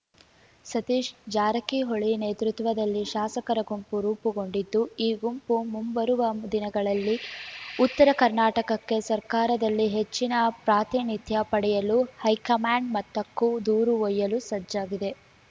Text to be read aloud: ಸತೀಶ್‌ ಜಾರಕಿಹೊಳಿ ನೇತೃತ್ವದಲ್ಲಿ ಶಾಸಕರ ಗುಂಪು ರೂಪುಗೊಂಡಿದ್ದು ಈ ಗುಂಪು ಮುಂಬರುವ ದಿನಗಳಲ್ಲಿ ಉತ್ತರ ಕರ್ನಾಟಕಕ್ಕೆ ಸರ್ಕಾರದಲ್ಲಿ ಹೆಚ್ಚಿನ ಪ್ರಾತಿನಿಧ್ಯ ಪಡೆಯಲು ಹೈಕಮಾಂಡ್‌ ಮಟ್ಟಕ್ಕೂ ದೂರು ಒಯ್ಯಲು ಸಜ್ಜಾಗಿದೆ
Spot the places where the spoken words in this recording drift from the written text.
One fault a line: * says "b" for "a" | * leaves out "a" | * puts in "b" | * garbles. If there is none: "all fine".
all fine